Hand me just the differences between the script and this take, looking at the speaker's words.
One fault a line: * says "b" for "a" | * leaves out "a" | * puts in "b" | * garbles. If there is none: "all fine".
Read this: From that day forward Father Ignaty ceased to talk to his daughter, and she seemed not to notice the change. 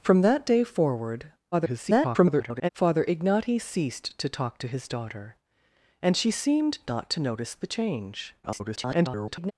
* garbles
* garbles